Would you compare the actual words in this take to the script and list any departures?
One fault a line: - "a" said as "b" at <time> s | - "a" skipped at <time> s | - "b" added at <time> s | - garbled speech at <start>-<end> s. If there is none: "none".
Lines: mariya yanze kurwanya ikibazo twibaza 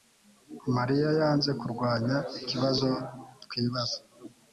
none